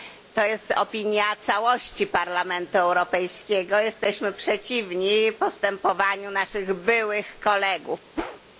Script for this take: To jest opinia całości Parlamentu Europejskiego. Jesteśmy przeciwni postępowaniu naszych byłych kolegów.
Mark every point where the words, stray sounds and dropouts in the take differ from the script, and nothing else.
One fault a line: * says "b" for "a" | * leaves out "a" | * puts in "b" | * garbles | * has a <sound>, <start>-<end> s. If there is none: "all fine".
* has a whoosh, 8.2-8.4 s